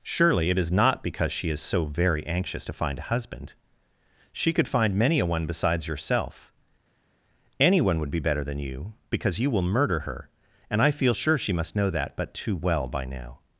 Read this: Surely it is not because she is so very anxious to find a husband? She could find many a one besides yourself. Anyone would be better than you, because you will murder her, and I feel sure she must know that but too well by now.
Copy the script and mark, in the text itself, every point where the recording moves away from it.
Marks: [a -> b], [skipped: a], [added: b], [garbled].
Surely it is not because she is so very anxious to find a husband? She could find many a one besides yourself. Anyone would be better than you, because you will murder her, and I feel sure she must know that but too well by now.